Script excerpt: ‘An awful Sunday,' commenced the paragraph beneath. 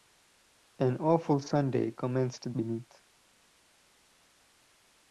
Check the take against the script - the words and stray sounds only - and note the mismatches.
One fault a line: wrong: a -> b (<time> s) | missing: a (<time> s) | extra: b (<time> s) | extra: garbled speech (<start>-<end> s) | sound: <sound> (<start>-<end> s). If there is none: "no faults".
missing: the paragraph (2.5 s)